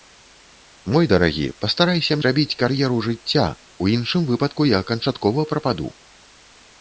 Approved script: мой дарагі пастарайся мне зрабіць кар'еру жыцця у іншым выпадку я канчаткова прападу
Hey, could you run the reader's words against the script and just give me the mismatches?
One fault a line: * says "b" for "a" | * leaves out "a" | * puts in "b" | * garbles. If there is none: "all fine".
* leaves out "мне"